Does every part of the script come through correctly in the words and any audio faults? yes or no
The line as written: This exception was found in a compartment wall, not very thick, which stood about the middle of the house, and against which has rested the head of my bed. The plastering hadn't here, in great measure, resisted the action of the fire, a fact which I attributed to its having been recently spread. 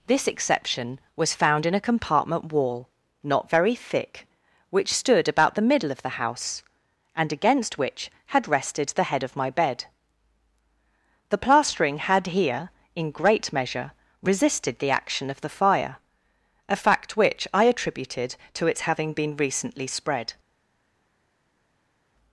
no